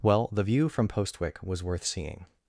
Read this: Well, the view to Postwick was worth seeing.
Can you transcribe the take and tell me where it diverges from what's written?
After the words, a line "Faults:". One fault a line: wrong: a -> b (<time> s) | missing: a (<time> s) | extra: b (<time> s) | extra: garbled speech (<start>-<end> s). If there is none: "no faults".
Well, the view from Postwick was worth seeing.
Faults:
wrong: to -> from (0.7 s)